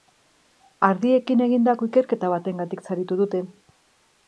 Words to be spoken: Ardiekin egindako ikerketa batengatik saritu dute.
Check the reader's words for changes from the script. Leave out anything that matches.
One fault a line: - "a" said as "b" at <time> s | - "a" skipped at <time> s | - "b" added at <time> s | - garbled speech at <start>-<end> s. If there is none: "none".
none